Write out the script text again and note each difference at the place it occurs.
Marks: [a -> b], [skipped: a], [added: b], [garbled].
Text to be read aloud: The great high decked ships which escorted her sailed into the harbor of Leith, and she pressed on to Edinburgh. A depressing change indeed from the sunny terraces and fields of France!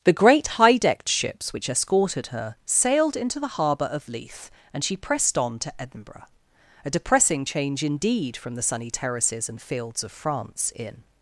The great high decked ships which escorted her sailed into the harbor of Leith, and she pressed on to Edinburgh. A depressing change indeed from the sunny terraces and fields of France! [added: In]